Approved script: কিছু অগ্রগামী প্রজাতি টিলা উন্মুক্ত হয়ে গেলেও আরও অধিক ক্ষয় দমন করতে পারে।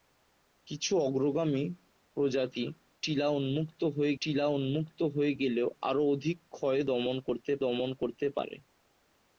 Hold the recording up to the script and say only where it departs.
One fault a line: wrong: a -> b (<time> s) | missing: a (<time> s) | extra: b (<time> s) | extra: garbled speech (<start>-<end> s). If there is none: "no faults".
extra: টিলা উন্মুক্ত হয়ে (4.2 s)
extra: দমন করতে (7.6 s)